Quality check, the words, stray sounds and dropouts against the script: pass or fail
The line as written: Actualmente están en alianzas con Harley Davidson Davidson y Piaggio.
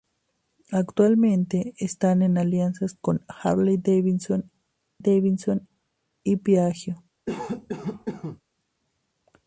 fail